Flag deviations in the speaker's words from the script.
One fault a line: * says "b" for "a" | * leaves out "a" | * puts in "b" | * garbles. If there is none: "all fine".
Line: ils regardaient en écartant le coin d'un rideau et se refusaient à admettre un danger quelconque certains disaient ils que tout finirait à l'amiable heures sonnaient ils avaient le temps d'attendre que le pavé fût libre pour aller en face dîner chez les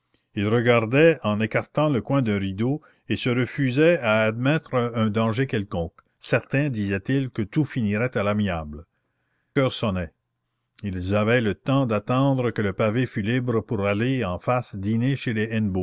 all fine